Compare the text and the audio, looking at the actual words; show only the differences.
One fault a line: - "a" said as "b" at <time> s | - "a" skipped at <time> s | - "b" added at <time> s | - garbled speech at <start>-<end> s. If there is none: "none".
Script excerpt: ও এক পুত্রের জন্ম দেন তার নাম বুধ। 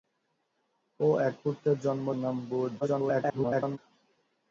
- "দেন তার" skipped at 2.1 s
- garbled speech at 2.8-3.8 s